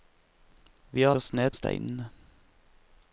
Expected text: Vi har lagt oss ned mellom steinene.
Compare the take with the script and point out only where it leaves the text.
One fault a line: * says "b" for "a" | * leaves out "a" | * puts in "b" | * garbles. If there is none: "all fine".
* leaves out "lagt"
* leaves out "mellom"